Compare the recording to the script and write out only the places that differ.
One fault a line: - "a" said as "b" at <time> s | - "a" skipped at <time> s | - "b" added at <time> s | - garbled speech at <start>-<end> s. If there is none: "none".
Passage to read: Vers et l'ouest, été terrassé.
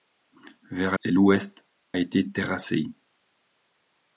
none